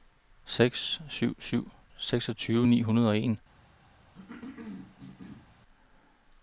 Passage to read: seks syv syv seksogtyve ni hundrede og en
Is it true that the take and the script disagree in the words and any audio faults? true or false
true